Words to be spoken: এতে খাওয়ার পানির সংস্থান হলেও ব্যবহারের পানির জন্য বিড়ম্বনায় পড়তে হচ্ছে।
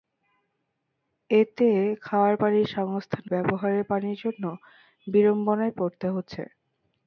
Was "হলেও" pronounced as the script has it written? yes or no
no